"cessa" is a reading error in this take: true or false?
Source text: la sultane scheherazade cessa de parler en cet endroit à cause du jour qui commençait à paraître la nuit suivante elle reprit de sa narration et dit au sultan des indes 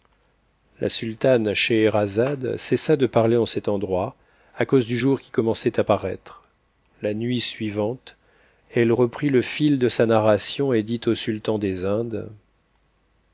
false